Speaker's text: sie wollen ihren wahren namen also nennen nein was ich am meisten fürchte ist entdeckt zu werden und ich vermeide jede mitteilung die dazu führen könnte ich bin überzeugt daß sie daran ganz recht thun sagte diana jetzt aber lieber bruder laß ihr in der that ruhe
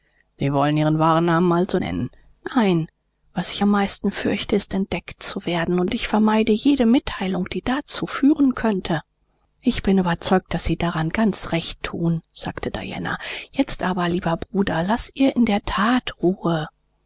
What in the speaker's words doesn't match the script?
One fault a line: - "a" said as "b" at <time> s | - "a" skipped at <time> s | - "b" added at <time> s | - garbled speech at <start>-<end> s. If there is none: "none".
none